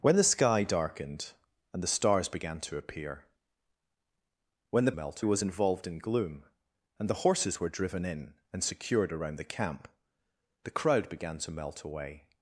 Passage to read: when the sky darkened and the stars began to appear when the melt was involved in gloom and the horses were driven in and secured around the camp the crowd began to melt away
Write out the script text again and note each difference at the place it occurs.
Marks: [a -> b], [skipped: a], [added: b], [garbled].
when the sky darkened and the stars began to appear when the melt was involved in gloom and the horses were driven in and secured around the camp the crowd began to melt away